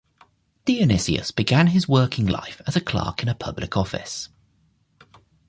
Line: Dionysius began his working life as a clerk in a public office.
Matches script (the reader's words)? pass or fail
pass